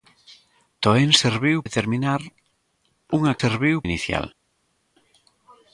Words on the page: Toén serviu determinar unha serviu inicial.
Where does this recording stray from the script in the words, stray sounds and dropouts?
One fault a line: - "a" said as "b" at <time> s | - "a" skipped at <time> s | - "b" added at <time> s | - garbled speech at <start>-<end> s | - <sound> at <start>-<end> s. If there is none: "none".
none